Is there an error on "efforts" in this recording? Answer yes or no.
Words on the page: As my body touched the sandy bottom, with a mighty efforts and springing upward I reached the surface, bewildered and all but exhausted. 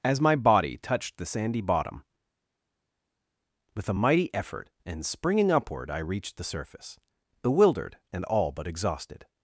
yes